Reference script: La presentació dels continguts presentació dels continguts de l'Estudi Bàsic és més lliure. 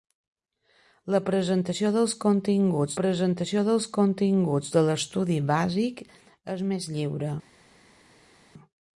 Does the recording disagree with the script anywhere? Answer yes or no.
no